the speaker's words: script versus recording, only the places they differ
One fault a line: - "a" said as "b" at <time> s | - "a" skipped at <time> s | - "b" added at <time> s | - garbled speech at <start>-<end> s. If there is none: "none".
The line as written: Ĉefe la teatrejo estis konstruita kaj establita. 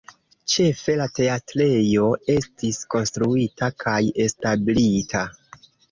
none